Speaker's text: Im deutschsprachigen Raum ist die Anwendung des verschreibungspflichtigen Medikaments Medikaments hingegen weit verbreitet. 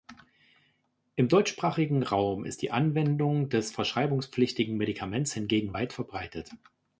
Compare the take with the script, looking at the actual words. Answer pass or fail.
fail